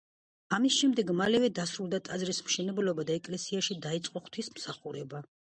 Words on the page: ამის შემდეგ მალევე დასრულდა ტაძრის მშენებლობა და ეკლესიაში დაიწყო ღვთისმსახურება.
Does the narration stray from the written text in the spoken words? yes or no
no